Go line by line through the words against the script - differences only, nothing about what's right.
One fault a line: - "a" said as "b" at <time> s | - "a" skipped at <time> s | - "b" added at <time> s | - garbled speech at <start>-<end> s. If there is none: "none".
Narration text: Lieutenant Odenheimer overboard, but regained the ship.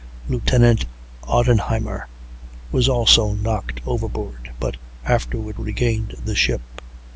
- "was also knocked" added at 2.7 s
- "afterward" added at 5.0 s